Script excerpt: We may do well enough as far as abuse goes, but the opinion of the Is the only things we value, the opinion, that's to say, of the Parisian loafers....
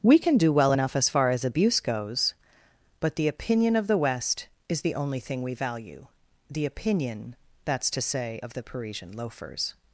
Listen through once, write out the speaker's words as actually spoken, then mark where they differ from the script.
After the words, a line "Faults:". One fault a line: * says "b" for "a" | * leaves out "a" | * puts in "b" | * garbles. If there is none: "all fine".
We can do well enough as far as abuse goes, but the opinion of the West is the only thing we value, the opinion, that's to say, of the Parisian loafers....
Faults:
* says "can" for "may"
* puts in "West"
* says "thing" for "things"